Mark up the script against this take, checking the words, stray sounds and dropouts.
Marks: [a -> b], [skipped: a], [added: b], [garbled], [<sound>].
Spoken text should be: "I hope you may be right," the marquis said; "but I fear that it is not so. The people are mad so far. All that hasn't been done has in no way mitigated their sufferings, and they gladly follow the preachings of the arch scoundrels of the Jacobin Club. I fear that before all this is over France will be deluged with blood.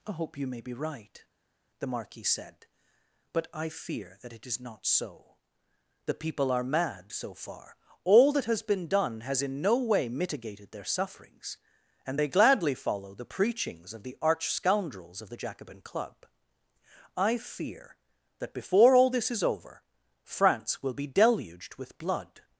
"I hope you may be right," the marquis said; "but I fear that it is not so. The people are mad so far. All that [hasn't -> has] been done has in no way mitigated their sufferings, and they gladly follow the preachings of the arch scoundrels of the Jacobin Club. I fear that before all this is over France will be deluged with blood.